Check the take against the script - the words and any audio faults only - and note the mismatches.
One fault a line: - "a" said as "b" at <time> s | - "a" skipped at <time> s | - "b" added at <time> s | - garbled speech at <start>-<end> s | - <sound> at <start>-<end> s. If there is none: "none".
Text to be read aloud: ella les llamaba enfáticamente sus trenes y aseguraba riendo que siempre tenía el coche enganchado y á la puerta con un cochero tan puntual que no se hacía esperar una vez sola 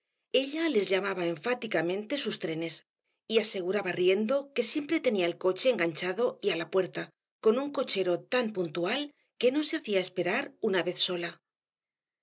none